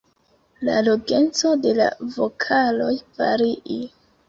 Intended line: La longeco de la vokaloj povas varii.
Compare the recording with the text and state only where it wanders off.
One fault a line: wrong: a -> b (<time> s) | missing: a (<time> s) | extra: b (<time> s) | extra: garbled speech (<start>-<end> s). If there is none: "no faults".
missing: povas (3.0 s)